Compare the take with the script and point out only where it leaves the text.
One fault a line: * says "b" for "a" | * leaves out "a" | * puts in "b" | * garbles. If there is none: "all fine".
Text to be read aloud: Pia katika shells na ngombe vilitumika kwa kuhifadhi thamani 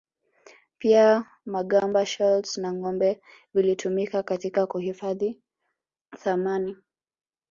* says "magamba" for "katika"
* says "katika" for "kwa"